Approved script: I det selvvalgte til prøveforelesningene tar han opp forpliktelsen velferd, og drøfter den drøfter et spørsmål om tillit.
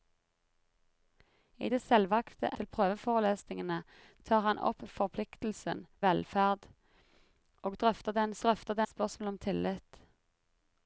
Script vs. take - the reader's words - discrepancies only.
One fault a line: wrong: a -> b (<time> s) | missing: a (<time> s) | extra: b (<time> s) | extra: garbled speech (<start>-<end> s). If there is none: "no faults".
no faults